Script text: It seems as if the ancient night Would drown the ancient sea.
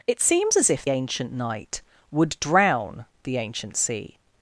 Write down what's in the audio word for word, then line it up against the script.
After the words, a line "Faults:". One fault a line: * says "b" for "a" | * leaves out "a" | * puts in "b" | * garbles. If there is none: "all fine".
It seems as if ancient night Would drown the ancient sea.
Faults:
* leaves out "the"